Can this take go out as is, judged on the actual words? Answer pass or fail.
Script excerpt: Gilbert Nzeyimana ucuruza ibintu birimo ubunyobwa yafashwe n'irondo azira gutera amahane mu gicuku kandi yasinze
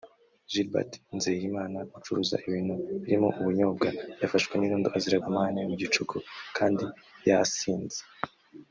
fail